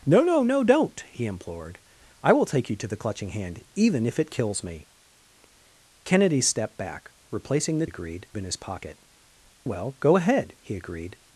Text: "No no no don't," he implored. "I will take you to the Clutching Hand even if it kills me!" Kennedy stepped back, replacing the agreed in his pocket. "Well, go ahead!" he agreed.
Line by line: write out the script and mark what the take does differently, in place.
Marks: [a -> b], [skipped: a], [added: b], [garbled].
"No no no don't," he implored. "I will take you to the Clutching Hand even if it kills me!" Kennedy stepped back, replacing the agreed in his pocket. "Well, go ahead!" he agreed.